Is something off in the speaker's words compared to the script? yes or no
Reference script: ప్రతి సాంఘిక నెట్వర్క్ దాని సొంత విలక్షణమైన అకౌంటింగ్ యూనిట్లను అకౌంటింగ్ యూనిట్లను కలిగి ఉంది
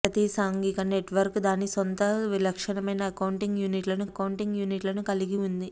no